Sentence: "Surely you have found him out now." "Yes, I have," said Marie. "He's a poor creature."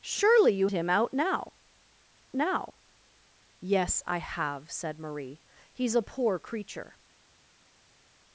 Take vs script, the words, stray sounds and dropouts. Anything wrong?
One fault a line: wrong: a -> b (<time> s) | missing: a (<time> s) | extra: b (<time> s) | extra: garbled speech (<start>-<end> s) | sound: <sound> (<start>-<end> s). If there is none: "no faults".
missing: have found (0.7 s)
extra: now (2.3 s)